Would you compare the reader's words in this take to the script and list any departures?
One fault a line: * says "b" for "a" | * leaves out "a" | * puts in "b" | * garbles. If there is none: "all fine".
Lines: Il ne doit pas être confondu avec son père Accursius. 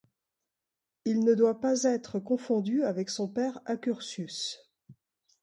all fine